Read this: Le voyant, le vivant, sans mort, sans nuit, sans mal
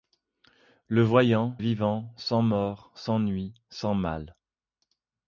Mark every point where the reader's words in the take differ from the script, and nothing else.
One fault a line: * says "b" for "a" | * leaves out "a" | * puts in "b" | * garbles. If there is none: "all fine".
* leaves out "le"